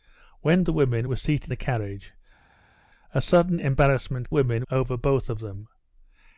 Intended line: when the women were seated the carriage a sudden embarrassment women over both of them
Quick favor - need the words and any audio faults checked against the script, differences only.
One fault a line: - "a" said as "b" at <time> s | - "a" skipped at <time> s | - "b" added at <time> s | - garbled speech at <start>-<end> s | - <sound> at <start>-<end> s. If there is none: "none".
none